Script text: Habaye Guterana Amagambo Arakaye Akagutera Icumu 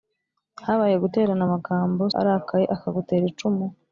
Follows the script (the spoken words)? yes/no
yes